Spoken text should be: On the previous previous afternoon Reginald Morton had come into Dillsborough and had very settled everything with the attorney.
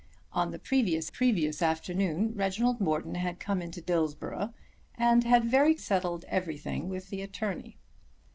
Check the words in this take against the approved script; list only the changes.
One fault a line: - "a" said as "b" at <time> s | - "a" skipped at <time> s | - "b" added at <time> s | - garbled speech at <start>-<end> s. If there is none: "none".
none